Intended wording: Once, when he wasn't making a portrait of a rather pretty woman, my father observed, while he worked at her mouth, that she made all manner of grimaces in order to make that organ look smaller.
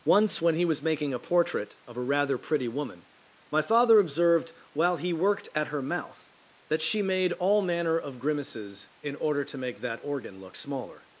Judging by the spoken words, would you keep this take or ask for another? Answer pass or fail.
fail